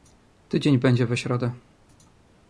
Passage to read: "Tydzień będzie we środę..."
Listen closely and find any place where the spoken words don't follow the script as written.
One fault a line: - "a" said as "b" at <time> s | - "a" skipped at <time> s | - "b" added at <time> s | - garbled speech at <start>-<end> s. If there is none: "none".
none